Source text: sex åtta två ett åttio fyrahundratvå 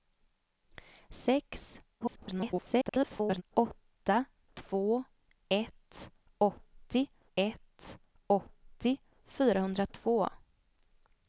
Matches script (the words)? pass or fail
fail